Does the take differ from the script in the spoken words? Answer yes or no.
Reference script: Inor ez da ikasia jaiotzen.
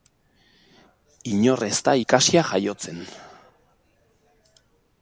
no